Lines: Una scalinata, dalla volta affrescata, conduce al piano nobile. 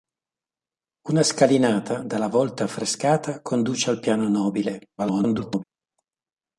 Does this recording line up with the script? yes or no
no